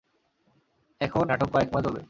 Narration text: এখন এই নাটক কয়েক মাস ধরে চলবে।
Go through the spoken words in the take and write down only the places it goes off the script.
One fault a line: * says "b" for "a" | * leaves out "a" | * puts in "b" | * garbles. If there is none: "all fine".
* leaves out "এই"
* leaves out "ধরে"